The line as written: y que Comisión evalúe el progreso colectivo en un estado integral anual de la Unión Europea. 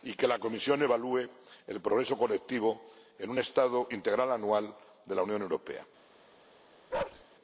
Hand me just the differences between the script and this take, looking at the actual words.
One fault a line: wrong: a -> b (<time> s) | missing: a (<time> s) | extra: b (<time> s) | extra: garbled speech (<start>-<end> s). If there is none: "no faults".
extra: la (0.3 s)